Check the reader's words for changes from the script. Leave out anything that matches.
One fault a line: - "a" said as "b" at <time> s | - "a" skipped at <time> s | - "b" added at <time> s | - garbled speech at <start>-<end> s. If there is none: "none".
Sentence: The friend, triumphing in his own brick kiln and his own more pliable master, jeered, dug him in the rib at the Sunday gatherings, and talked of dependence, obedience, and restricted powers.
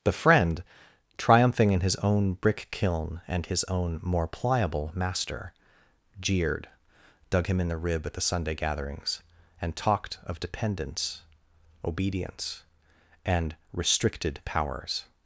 none